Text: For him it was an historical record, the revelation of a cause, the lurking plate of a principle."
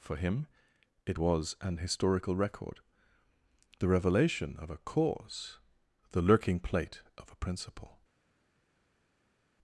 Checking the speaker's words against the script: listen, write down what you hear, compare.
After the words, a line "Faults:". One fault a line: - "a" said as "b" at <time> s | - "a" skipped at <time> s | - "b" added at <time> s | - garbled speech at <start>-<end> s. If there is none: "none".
For him it was an historical record, the revelation of a cause, the lurking plate of a principle."
Faults:
none